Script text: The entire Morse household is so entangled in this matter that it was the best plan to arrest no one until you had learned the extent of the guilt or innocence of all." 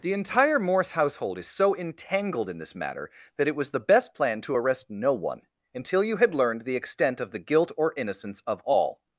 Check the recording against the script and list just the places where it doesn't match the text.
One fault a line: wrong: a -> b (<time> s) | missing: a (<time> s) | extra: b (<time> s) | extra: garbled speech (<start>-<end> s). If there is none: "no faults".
no faults